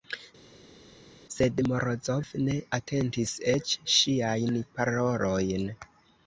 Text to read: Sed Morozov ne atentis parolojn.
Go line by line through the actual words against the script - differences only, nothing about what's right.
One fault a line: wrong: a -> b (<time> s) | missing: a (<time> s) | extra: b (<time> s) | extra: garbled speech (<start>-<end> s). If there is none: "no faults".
extra: eĉ ŝiajn (3.5 s)